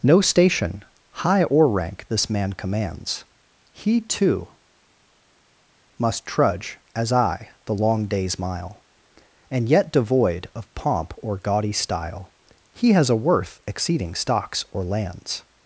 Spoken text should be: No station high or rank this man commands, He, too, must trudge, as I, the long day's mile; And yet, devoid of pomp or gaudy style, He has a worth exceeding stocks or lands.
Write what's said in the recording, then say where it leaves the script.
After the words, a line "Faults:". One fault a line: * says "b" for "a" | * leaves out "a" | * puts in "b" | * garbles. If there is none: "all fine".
No station high or rank this man commands, He, too, must trudge, as I, the long day's mile; And yet, devoid of pomp or gaudy style, He has a worth exceeding stocks or lands.
Faults:
all fine